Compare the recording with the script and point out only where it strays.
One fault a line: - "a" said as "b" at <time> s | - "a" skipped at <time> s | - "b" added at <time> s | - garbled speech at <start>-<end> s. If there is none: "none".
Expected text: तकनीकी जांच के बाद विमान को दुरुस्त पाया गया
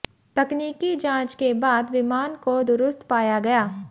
none